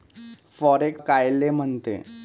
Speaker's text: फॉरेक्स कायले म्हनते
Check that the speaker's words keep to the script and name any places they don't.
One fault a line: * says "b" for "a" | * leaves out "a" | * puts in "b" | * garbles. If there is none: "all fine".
all fine